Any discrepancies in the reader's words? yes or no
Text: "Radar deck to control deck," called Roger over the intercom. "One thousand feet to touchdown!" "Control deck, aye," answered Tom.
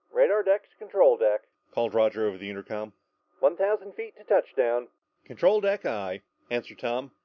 no